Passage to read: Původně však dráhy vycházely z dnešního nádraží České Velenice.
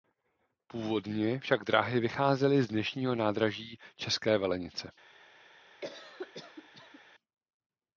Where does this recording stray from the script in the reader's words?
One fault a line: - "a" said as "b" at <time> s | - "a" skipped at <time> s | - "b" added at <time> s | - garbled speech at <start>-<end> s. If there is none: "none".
none